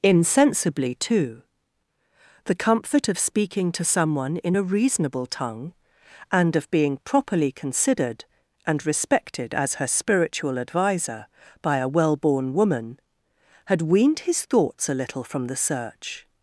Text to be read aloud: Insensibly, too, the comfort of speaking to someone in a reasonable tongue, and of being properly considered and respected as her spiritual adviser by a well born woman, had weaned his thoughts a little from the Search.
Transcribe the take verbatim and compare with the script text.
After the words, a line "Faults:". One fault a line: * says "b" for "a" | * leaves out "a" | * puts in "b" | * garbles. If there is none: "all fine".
Insensibly, too, the comfort of speaking to someone in a reasonable tongue, and of being properly considered and respected as her spiritual adviser by a well born woman, had weaned his thoughts a little from the Search.
Faults:
all fine